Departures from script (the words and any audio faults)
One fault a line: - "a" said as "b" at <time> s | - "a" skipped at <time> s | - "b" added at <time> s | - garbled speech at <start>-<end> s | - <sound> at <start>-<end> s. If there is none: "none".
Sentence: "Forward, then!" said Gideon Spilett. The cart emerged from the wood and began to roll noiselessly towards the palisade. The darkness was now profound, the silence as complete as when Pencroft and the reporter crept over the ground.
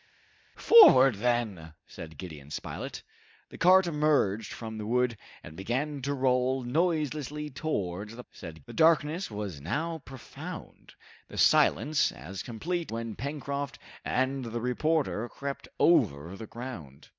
- "palisade" said as "said" at 8.3 s
- "as" skipped at 12.9 s